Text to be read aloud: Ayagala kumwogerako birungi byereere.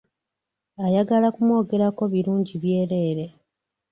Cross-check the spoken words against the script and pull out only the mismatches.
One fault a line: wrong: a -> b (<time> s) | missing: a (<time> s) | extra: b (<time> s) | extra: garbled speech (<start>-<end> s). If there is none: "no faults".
no faults